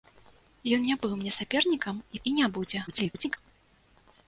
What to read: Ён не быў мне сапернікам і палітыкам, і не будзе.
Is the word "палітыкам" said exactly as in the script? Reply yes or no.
no